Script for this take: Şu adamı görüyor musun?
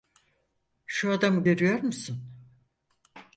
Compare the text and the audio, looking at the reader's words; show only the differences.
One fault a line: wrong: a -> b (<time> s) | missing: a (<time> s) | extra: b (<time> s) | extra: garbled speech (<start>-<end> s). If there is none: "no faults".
no faults